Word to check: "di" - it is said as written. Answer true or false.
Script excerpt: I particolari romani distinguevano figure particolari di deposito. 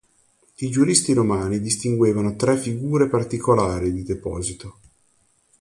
true